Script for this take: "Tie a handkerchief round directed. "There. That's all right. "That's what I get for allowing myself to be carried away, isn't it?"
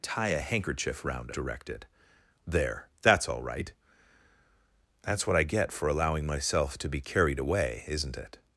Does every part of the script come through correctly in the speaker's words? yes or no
yes